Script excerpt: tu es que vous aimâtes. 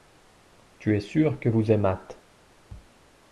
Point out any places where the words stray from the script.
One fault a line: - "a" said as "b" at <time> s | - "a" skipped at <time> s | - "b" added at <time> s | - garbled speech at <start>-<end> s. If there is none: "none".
- "sûr" added at 1.0 s